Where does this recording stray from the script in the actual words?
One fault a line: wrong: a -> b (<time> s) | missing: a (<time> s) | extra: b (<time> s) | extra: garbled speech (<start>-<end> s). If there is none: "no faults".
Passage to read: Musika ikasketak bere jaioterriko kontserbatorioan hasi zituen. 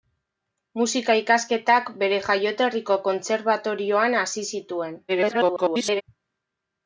extra: garbled speech (5.1-6.0 s)